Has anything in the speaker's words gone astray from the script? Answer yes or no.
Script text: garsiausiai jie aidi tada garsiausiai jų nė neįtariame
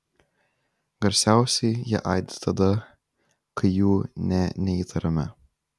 yes